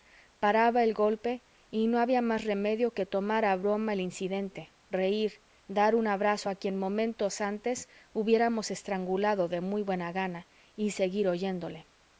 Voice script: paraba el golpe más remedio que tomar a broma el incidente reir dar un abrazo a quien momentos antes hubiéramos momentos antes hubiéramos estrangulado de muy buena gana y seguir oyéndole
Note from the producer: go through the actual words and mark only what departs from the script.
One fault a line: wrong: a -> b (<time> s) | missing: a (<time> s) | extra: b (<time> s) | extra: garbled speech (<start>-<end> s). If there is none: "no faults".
extra: y no había (1.7 s)
missing: momentos antes hubiéramos (8.7 s)